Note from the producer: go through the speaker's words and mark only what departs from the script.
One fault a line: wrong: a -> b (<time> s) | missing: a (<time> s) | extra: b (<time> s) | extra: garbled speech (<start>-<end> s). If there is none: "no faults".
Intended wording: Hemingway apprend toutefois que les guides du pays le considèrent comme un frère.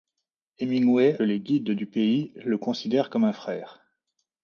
missing: apprend toutefois que (1.2 s)